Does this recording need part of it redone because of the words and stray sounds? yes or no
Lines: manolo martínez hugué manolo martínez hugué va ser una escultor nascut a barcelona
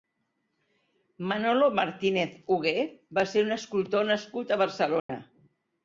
yes